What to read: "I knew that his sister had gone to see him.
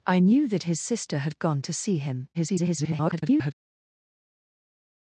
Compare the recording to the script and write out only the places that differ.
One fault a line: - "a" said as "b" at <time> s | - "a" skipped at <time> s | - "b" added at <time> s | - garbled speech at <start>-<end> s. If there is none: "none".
- garbled speech at 2.3-3.5 s